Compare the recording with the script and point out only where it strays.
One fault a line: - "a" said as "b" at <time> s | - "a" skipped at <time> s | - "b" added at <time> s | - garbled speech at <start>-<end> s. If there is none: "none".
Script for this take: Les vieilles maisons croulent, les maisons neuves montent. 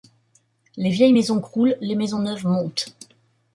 none